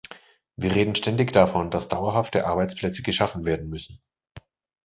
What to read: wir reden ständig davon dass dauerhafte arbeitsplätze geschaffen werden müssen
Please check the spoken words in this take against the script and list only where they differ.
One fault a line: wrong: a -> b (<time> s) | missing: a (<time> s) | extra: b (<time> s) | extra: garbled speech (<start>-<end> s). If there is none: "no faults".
no faults